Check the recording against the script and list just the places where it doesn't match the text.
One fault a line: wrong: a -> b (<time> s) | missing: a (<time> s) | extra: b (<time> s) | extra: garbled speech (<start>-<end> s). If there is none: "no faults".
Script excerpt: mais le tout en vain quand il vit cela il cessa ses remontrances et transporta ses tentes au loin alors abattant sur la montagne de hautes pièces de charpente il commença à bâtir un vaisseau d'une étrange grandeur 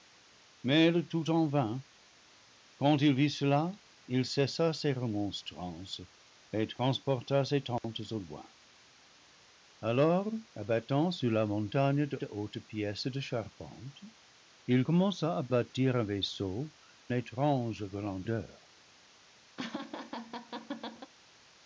extra: de (12.2 s)
missing: d'une (16.7 s)